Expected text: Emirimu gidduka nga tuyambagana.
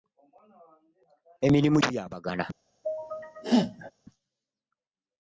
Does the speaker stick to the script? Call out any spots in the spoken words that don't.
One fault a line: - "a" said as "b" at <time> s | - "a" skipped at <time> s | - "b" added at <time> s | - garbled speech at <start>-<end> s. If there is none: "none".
- "gidduka nga" skipped at 1.8 s